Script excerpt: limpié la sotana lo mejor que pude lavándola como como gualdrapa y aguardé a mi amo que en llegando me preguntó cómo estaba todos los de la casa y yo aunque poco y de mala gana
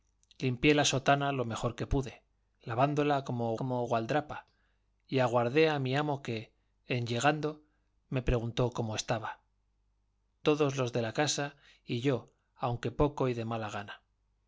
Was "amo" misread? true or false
false